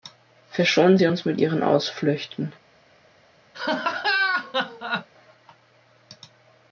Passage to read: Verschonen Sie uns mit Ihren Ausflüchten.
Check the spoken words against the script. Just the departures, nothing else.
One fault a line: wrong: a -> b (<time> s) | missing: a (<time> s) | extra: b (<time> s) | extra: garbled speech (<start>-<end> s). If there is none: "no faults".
no faults